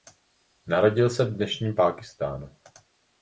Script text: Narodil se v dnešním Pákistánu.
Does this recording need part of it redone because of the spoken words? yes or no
no